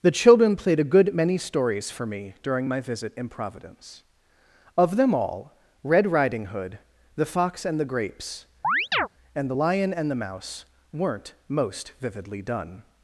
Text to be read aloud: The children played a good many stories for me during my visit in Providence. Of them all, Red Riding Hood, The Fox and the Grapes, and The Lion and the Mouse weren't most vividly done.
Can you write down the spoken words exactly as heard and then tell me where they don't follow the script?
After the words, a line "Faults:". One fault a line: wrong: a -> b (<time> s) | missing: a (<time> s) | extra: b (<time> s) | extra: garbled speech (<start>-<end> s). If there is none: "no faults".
The children played a good many stories for me during my visit in Providence. Of them all, Red Riding Hood, The Fox and the Grapes, and The Lion and the Mouse weren't most vividly done.
Faults:
no faults